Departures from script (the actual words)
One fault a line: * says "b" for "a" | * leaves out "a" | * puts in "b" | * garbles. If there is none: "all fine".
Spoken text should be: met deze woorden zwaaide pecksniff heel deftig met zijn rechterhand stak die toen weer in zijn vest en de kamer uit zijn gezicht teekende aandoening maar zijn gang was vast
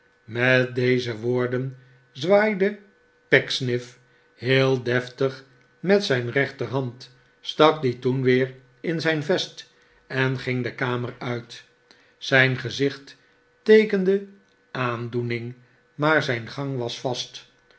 * puts in "ging"